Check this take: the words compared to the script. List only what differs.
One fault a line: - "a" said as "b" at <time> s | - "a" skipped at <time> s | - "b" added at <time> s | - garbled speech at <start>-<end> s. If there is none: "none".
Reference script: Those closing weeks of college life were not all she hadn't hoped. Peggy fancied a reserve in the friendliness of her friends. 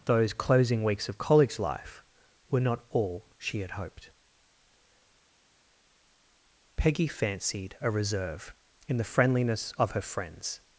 - "hadn't" said as "had" at 3.6 s